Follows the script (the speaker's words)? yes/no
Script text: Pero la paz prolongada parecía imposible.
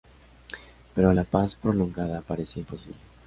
yes